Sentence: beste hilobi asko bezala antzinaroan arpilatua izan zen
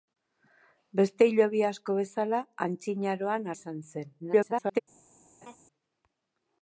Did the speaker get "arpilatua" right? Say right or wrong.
wrong